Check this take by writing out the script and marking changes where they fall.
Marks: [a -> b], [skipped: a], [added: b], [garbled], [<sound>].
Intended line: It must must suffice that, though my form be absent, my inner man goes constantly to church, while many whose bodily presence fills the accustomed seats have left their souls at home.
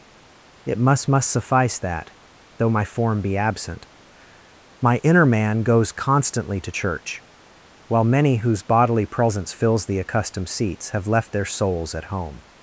It must must suffice that, though my form be absent, my inner man goes constantly to church, while many whose bodily presence fills the accustomed seats have left their souls at home.